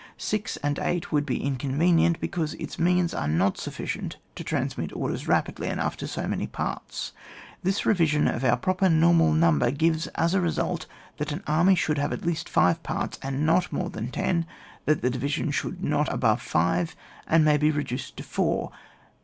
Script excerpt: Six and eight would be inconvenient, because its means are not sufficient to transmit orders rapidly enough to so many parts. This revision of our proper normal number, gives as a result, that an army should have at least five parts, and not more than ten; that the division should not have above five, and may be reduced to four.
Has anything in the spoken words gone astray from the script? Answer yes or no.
yes